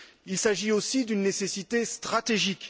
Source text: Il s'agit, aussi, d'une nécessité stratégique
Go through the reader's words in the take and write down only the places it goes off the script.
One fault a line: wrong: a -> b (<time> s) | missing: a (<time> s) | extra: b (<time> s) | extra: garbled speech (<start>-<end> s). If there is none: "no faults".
no faults